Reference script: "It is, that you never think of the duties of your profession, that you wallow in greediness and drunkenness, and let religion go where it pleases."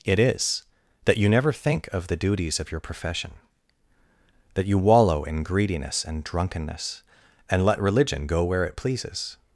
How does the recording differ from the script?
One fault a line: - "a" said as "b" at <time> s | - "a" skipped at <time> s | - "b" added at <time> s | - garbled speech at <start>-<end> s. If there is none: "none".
none